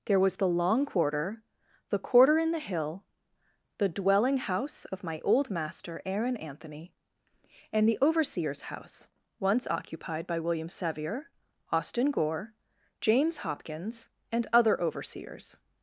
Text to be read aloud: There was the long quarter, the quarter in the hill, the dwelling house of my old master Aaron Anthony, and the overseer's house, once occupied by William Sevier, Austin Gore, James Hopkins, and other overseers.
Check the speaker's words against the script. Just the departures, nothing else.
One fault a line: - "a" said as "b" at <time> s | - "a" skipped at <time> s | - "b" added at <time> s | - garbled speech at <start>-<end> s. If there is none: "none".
none